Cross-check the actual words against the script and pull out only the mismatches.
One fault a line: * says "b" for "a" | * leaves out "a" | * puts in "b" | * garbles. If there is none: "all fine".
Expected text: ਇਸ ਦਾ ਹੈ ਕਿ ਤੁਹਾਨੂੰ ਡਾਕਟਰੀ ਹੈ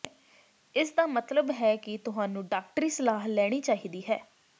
* puts in "ਮਤਲਬ"
* puts in "ਸਲਾਹ ਲੈਣੀ ਚਾਹੀਦੀ"